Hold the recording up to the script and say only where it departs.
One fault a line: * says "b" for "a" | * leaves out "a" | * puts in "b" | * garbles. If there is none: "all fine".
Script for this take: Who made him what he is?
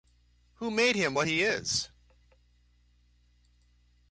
all fine